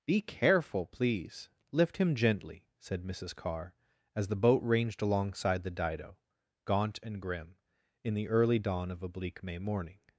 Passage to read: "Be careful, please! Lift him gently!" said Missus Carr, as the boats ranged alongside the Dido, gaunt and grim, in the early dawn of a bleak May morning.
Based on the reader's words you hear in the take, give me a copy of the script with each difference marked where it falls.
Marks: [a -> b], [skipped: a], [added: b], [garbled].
"Be careful, please! Lift him gently!" said Missus Carr, as the [boats -> boat] ranged alongside the Dido, gaunt and grim, in the early dawn of a bleak May morning.